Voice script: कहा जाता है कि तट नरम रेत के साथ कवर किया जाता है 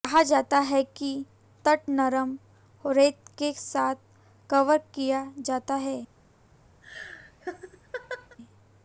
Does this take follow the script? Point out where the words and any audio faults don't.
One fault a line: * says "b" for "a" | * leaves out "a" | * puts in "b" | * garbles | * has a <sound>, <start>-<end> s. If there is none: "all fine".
* has a laugh, 6.8-8.4 s